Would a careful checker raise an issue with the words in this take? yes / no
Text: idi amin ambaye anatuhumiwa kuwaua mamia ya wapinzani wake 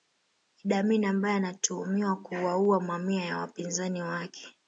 no